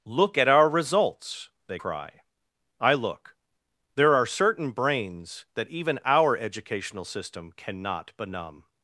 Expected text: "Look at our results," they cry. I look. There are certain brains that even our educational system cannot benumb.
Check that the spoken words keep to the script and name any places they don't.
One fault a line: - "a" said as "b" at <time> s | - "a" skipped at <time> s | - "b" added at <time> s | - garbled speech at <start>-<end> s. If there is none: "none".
none